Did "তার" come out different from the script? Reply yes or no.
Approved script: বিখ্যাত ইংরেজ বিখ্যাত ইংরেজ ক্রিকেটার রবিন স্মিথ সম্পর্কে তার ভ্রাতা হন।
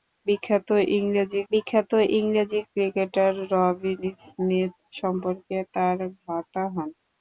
no